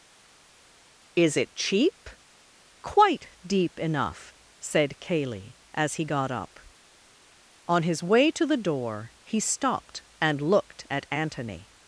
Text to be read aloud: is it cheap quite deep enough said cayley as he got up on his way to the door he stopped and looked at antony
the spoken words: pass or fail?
pass